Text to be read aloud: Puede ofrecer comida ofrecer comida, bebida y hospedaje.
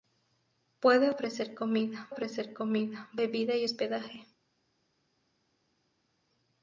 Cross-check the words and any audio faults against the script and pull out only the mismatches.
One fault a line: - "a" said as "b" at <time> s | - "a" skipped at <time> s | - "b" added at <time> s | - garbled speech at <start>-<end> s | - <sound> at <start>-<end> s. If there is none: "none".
none